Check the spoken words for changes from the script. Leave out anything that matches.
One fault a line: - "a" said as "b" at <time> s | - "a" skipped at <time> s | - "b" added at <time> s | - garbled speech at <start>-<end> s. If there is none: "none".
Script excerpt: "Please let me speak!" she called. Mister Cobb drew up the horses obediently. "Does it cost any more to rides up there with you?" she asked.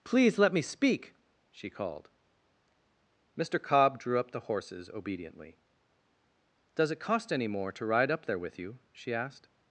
- "rides" said as "ride" at 7.8 s